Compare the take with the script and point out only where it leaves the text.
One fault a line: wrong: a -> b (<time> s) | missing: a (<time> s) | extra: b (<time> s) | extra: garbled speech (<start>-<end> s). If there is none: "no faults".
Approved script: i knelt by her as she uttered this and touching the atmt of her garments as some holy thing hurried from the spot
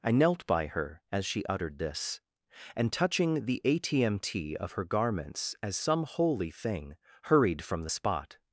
no faults